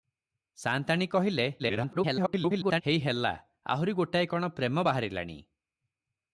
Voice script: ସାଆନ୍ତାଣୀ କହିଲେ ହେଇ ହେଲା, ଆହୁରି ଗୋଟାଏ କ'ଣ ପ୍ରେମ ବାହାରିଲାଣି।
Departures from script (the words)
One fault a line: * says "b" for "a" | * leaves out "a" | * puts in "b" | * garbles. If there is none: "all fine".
* garbles